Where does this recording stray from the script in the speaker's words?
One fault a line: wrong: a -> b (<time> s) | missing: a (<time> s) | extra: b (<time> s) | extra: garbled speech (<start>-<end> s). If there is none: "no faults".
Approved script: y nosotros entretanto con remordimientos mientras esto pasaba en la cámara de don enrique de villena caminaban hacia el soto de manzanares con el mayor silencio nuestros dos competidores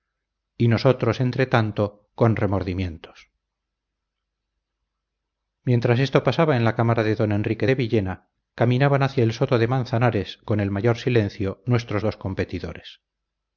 no faults